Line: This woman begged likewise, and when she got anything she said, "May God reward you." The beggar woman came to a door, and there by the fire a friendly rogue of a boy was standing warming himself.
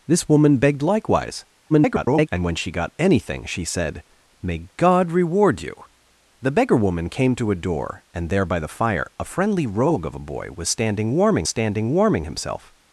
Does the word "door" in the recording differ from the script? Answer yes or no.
no